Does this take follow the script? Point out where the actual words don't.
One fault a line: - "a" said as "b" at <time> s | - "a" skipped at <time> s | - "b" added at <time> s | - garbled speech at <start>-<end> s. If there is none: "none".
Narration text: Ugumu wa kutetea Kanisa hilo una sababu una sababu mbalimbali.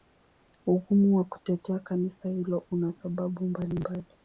- "una sababu" skipped at 3.5 s